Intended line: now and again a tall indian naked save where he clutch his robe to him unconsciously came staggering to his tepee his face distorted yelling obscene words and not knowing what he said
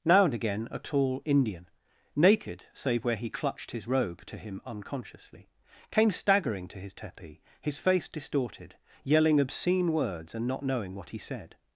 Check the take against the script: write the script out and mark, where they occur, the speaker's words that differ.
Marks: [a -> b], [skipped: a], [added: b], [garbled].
now and again a tall indian naked save where he [clutch -> clutched] his robe to him unconsciously came staggering to his tepee his face distorted yelling obscene words and not knowing what he said